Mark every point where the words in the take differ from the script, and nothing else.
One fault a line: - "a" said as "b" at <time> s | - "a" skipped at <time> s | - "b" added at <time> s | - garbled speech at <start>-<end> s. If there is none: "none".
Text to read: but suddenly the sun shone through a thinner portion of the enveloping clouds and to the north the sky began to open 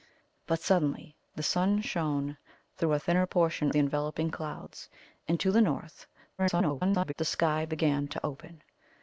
- "of" skipped at 3.7 s
- garbled speech at 6.4-7.1 s